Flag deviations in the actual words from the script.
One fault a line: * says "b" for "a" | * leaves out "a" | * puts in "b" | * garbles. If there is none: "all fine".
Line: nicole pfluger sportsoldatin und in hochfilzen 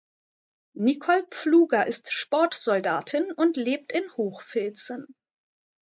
* puts in "ist"
* puts in "lebt"